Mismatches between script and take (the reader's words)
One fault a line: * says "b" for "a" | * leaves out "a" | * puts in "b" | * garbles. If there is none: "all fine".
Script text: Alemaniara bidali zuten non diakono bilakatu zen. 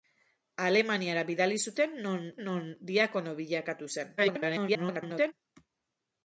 * puts in "non"
* garbles